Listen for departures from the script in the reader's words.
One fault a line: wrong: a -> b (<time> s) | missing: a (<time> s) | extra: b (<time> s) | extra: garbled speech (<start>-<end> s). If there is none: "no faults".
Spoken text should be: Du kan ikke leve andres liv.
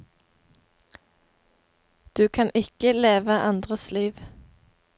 no faults